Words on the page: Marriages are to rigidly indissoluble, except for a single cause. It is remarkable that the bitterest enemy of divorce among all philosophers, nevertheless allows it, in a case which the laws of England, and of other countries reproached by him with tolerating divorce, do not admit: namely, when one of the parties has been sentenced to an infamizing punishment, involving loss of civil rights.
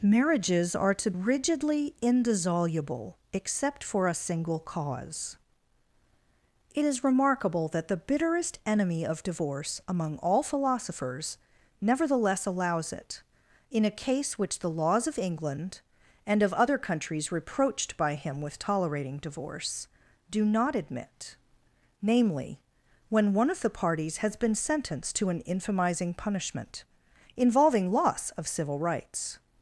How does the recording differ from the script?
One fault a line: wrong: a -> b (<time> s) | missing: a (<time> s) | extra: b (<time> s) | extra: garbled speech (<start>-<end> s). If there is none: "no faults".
no faults